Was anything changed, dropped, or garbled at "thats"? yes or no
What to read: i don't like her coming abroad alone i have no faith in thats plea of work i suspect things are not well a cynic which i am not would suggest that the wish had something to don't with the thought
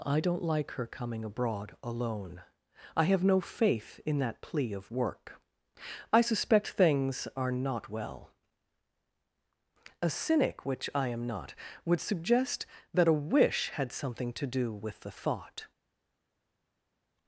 yes